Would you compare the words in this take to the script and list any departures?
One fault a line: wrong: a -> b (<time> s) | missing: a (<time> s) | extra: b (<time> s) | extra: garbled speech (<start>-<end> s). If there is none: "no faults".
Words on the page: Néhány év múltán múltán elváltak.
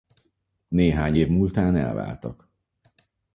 missing: múltán (1.7 s)